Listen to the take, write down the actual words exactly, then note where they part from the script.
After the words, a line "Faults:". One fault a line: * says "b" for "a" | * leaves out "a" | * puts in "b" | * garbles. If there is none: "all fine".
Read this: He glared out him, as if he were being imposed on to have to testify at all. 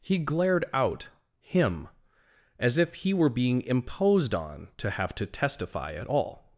He glared out him, as if he were being imposed on to have to testify at all.
Faults:
all fine